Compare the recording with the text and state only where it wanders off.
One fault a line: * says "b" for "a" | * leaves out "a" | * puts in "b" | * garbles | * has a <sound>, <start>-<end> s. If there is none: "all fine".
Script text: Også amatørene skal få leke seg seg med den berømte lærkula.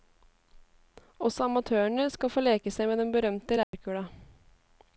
* leaves out "seg"
* has a dropout, 3.6-3.7 s